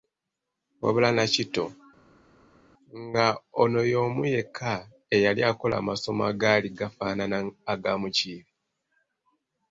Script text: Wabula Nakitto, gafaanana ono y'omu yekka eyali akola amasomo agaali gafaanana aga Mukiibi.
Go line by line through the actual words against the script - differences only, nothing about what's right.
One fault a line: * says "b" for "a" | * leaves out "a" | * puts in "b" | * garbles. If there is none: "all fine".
* says "nga" for "gafaanana"